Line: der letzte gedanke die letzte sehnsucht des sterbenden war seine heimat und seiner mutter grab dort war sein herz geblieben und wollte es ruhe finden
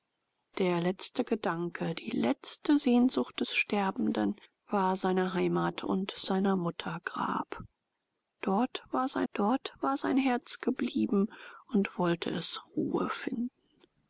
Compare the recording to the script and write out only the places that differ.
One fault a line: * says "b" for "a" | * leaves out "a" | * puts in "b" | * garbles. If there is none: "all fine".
* puts in "dort war sein"